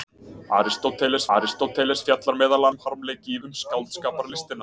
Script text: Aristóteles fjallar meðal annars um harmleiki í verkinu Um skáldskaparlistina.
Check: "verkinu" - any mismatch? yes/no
yes